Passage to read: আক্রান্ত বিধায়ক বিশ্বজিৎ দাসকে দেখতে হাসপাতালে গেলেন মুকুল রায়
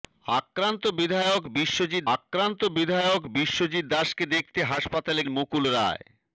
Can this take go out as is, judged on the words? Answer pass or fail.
fail